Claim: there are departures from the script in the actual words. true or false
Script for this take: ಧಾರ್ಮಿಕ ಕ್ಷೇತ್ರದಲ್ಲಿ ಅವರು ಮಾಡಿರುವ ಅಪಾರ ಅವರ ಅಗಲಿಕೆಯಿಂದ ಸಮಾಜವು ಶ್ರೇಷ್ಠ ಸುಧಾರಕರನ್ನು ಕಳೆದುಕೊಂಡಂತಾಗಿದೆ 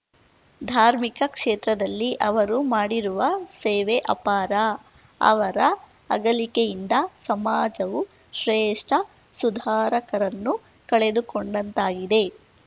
true